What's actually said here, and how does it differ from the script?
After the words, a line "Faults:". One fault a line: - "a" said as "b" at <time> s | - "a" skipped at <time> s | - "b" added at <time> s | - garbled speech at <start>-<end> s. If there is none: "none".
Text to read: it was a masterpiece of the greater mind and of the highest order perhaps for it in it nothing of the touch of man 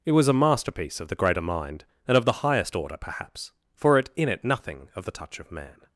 it was a masterpiece of the greater mind and of the highest order perhaps for it in it nothing of the touch of man
Faults:
none